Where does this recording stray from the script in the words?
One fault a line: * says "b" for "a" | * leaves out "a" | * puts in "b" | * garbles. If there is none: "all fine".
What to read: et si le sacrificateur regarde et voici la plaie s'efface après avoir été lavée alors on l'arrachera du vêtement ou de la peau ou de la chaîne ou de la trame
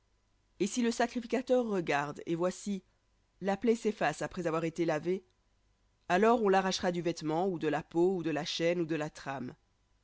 all fine